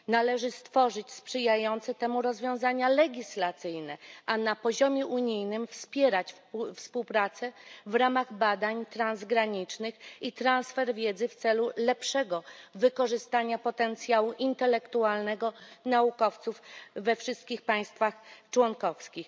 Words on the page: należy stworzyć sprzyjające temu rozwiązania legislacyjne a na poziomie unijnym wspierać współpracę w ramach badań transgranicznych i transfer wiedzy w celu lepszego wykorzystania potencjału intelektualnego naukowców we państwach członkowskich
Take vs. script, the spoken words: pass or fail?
fail